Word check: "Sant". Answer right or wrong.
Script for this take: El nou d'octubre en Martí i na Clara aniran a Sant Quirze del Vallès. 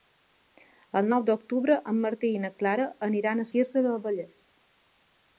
wrong